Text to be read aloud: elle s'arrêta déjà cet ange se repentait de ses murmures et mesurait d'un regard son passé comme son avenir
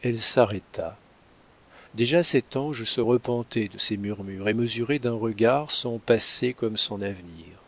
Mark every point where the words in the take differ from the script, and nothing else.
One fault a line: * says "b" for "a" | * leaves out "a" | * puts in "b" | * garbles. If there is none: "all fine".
all fine